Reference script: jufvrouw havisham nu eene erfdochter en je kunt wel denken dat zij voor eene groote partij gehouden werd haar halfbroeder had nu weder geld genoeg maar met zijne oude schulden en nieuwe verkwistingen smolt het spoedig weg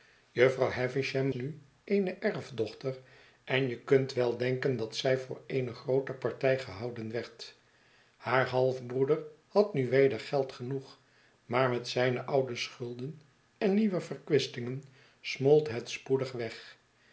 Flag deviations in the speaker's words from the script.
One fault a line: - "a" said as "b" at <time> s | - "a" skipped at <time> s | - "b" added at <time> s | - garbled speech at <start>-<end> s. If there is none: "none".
none